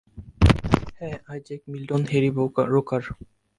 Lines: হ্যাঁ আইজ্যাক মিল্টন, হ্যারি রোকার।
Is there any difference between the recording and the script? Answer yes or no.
no